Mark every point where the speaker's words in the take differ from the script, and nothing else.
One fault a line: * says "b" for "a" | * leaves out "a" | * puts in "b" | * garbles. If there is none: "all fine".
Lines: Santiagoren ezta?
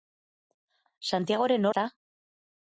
all fine